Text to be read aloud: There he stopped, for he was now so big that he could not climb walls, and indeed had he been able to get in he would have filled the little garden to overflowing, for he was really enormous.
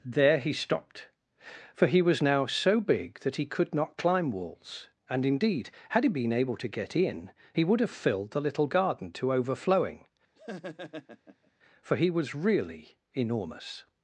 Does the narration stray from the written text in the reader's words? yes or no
no